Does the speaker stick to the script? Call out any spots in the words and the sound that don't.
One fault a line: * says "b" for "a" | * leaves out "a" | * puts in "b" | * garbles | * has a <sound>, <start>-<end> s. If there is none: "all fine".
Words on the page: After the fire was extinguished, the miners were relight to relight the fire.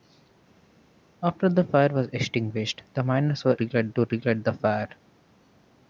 all fine